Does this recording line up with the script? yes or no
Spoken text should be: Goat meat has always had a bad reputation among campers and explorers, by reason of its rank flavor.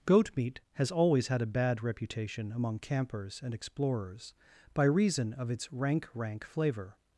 no